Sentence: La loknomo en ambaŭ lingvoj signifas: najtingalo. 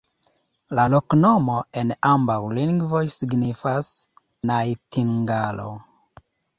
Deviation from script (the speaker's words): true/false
false